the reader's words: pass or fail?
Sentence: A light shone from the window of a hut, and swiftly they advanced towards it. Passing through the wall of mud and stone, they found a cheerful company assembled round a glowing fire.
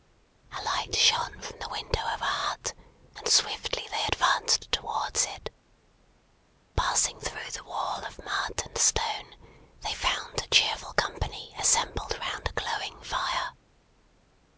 pass